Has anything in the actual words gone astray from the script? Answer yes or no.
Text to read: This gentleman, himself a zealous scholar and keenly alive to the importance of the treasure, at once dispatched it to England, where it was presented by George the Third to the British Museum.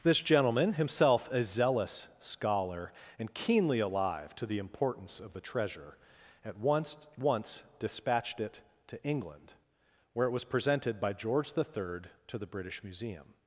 yes